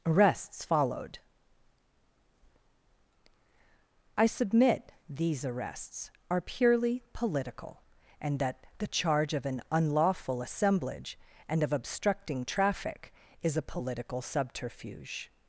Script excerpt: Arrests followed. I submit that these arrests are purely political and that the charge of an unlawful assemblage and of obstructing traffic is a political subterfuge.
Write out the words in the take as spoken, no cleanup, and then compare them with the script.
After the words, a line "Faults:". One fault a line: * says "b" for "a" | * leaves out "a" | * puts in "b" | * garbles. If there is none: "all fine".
Arrests followed. I submit these arrests are purely political and that the charge of an unlawful assemblage and of obstructing traffic is a political subterfuge.
Faults:
* leaves out "that"